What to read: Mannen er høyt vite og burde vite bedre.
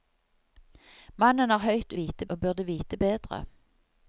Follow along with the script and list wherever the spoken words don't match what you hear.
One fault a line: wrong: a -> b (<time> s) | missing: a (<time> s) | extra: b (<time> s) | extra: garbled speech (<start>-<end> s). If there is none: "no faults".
no faults